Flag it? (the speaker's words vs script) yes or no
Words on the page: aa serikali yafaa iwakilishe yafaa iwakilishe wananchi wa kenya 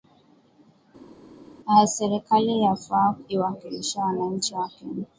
yes